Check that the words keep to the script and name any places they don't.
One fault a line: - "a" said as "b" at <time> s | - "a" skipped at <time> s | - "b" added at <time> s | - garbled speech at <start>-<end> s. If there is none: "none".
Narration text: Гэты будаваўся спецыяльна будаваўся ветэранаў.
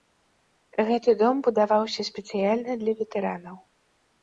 - "дом" added at 1.2 s
- "будаваўся" said as "для" at 2.9 s